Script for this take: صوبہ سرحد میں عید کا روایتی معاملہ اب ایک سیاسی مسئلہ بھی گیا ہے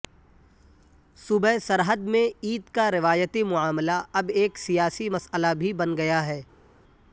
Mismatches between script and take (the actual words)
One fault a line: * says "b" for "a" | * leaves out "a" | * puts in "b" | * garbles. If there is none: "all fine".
* puts in "بن"